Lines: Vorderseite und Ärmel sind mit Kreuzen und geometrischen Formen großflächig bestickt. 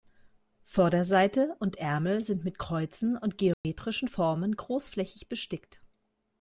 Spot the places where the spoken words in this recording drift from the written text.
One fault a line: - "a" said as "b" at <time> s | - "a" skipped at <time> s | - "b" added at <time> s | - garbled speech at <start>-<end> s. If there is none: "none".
none